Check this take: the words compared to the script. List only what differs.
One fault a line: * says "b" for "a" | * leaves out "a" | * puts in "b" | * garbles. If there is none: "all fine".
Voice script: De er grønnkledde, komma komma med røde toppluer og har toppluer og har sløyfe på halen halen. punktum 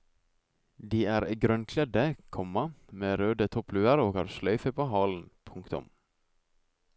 * leaves out "komma"
* leaves out "toppluer og har"
* leaves out "halen"